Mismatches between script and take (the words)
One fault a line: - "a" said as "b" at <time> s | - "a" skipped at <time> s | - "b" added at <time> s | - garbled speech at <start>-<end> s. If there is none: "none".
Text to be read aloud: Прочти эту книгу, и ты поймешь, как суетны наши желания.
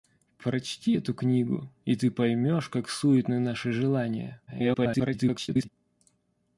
- garbled speech at 4.5-5.7 s